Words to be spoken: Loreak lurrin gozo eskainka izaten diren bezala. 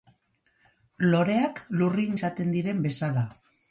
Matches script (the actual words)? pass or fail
fail